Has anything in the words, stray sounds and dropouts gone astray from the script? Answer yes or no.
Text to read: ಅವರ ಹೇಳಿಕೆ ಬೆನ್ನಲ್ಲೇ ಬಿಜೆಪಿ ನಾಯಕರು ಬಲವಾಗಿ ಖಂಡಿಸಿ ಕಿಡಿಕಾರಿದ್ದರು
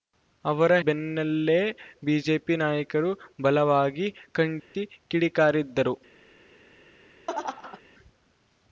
yes